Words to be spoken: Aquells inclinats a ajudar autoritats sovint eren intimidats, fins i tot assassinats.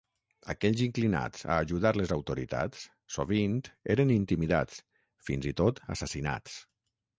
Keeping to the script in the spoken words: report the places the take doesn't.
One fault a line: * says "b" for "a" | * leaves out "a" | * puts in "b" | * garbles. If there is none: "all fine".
* puts in "les"